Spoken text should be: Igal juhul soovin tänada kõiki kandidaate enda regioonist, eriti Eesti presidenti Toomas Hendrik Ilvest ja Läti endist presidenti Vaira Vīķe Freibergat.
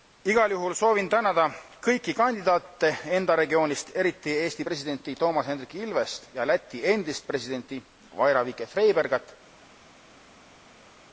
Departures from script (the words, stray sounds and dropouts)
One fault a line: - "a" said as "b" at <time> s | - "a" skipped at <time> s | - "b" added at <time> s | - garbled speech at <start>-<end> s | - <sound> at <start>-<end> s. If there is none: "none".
none